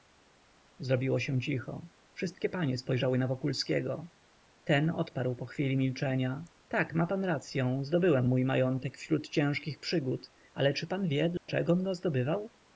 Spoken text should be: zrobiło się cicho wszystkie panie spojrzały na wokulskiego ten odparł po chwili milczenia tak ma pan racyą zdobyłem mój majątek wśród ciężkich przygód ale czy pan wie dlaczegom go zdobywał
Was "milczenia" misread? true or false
false